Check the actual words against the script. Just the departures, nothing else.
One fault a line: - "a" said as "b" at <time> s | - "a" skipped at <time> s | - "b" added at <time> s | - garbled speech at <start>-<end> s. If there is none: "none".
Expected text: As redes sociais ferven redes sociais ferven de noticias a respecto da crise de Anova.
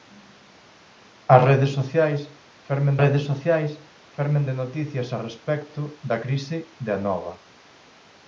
none